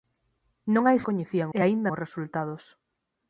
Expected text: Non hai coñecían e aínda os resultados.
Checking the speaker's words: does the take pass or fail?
pass